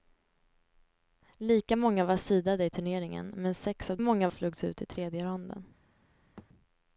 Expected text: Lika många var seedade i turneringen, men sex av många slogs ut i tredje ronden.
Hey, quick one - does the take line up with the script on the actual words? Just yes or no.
yes